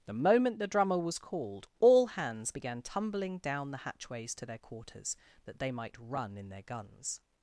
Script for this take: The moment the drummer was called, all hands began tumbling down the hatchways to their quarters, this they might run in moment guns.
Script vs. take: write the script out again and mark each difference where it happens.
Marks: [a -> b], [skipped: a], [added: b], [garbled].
The moment the drummer was called, all hands began tumbling down the hatchways to their quarters, [this -> that] they might run in [moment -> their] guns.